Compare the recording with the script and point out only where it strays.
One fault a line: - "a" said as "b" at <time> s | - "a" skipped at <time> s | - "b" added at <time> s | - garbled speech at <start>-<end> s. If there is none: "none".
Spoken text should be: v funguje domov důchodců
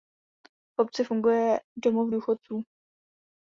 - "obci" added at 0.8 s